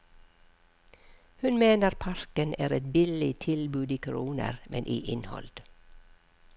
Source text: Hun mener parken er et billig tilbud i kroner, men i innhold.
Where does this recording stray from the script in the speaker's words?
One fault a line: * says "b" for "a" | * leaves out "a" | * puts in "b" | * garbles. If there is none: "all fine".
all fine